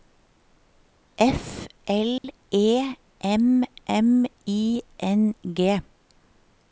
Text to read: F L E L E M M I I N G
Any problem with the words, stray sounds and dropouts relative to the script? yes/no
yes